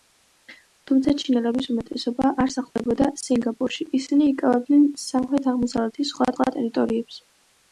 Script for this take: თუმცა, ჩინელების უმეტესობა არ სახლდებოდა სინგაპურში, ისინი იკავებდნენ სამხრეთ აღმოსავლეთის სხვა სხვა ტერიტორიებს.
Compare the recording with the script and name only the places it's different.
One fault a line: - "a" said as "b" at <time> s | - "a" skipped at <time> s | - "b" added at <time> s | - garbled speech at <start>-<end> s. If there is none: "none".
none